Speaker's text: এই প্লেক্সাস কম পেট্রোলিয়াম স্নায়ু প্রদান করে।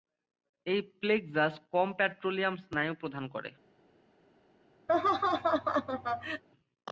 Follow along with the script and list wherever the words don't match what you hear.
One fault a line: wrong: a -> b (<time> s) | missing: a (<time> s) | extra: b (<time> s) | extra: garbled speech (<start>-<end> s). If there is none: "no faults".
no faults